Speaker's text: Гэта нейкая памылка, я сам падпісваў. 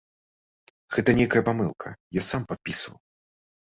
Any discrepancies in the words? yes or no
no